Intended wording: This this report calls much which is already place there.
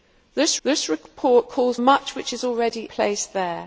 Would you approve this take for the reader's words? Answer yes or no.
yes